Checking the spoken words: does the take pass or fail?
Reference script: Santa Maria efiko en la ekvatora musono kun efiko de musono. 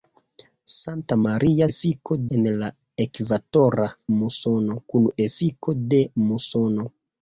pass